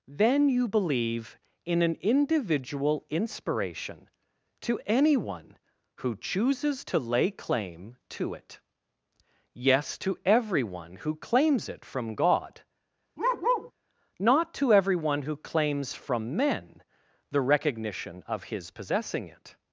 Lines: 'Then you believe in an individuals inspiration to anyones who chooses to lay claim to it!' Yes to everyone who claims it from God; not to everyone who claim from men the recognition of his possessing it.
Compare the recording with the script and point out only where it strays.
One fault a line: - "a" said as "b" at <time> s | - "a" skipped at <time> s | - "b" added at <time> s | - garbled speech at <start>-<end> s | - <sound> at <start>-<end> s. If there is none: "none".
- "individuals" said as "individual" at 2.0 s
- "anyones" said as "anyone" at 4.8 s
- bark at 13.2-13.7 s
- "claim" said as "claims" at 15.4 s